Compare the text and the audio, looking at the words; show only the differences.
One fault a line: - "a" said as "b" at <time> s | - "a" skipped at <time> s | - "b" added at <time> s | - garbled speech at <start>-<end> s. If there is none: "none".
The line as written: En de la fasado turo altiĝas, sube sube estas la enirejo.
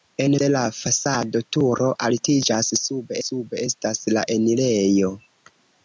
none